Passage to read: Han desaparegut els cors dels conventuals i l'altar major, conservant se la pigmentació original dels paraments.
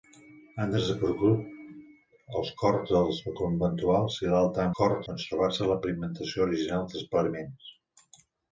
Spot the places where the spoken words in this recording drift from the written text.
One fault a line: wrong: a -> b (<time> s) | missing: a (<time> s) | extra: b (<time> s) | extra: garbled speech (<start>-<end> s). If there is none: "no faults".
wrong: major -> cors (4.8 s)